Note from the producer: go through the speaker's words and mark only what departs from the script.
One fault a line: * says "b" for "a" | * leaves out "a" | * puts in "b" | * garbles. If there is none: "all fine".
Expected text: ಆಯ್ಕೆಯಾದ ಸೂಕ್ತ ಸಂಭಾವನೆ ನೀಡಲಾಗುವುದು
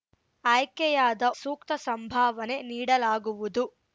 all fine